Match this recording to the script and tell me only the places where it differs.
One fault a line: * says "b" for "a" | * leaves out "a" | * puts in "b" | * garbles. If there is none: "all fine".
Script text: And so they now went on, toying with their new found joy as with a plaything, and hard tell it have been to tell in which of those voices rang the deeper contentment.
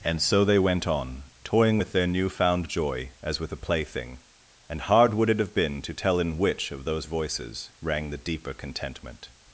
* leaves out "now"
* says "would" for "tell"